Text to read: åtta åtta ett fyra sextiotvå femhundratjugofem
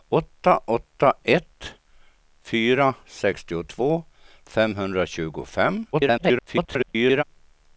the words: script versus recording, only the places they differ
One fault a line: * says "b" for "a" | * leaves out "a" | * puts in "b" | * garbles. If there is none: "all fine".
* garbles